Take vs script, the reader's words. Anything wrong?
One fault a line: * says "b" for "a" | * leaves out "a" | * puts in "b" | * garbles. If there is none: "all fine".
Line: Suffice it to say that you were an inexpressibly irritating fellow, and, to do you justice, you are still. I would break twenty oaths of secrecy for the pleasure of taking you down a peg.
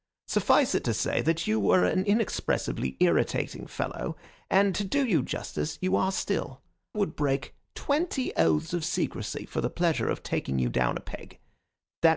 * leaves out "I"